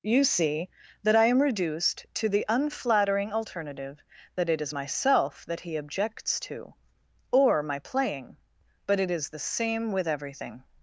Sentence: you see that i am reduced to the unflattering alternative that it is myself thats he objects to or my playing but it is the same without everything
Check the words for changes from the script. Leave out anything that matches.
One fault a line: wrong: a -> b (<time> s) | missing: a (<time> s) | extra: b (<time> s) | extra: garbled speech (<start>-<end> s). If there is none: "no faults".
wrong: thats -> that (5.5 s)
wrong: without -> with (9.9 s)